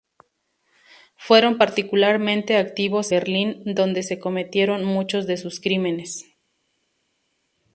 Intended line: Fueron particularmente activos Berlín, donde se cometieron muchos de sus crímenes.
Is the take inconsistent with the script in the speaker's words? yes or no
no